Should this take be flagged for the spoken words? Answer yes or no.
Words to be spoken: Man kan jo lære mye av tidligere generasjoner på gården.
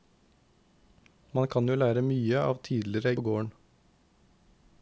yes